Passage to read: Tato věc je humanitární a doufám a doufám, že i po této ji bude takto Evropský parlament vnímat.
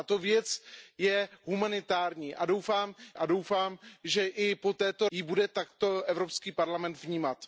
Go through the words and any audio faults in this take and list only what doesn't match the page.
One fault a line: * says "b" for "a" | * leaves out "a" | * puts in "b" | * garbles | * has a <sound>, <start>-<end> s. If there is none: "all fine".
all fine